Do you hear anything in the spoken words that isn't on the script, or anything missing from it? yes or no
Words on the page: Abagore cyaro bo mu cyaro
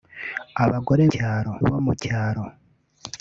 no